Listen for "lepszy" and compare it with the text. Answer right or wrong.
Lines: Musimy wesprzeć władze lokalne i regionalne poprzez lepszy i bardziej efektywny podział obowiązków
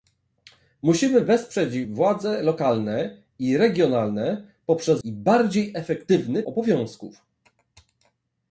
wrong